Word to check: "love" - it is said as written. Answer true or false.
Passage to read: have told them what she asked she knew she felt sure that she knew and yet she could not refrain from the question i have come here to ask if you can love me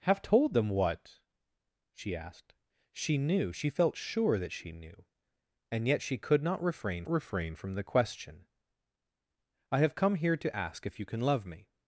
true